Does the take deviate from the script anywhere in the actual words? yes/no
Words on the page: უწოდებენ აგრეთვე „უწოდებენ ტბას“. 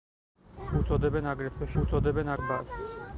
no